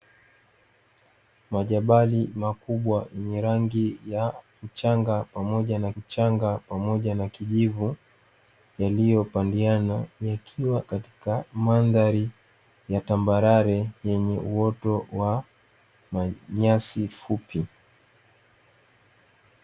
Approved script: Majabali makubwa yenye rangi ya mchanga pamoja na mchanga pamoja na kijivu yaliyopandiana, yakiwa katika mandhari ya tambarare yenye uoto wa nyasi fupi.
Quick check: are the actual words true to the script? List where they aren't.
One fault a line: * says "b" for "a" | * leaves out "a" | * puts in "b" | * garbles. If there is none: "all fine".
all fine